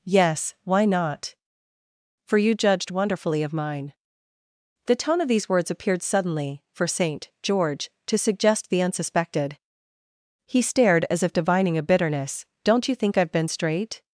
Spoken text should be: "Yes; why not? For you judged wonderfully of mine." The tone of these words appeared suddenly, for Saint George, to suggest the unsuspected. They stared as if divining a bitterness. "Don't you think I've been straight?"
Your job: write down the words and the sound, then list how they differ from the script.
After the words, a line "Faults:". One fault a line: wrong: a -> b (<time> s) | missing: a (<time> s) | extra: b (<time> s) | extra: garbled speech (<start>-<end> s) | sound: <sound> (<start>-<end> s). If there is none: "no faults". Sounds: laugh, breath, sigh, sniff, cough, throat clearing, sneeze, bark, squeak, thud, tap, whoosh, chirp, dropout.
"Yes; why not? For you judged wonderfully of mine." The tone of these words appeared suddenly, for Saint George, to suggest the unsuspected. He stared as if divining a bitterness. "Don't you think I've been straight?"
Faults:
wrong: They -> He (10.5 s)